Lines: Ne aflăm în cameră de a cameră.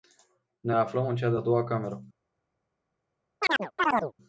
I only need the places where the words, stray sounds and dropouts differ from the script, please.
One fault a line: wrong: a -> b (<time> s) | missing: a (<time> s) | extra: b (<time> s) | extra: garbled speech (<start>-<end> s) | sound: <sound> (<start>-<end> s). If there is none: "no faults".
wrong: cameră -> cea (1.2 s)
extra: doua (1.4 s)
sound: chirp (3.4-4.1 s)